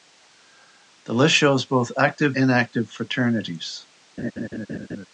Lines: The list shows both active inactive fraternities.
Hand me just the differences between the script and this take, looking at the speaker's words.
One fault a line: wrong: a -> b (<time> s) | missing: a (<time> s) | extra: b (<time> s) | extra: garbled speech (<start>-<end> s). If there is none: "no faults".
no faults